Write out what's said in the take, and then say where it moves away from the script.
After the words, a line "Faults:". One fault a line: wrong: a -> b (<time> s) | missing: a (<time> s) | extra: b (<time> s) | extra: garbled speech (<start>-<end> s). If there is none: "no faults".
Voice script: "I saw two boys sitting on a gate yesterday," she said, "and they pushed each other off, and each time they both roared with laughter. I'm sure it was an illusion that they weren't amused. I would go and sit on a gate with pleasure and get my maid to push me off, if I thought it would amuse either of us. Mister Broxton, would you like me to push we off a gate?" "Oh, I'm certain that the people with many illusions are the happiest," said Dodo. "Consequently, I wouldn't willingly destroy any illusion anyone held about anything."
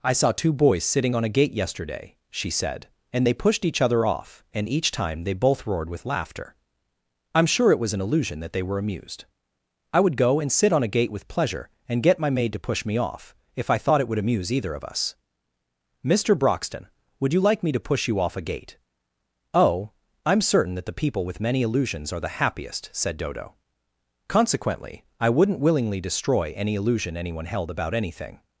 "I saw two boys sitting on a gate yesterday," she said, "and they pushed each other off, and each time they both roared with laughter. I'm sure it was an illusion that they were amused. I would go and sit on a gate with pleasure and get my maid to push me off, if I thought it would amuse either of us. Mister Broxton, would you like me to push you off a gate?" "Oh, I'm certain that the people with many illusions are the happiest," said Dodo. "Consequently, I wouldn't willingly destroy any illusion anyone held about anything."
Faults:
wrong: weren't -> were (8.6 s)
wrong: we -> you (18.1 s)